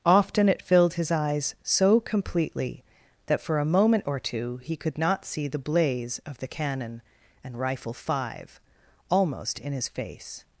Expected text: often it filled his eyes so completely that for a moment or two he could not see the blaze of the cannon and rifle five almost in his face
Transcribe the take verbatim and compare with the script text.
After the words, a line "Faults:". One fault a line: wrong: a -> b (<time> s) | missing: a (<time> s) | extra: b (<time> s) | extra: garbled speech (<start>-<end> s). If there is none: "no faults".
often it filled his eyes so completely that for a moment or two he could not see the blaze of the cannon and rifle five almost in his face
Faults:
no faults